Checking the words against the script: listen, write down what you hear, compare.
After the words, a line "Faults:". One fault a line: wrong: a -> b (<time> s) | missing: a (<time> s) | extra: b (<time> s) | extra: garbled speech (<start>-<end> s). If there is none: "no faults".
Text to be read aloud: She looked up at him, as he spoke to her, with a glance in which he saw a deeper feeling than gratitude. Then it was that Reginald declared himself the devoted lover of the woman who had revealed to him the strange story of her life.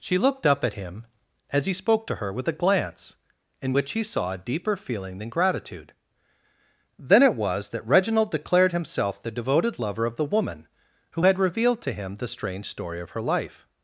She looked up at him, as he spoke to her, with a glance in which he saw a deeper feeling than gratitude. Then it was that Reginald declared himself the devoted lover of the woman who had revealed to him the strange story of her life.
Faults:
no faults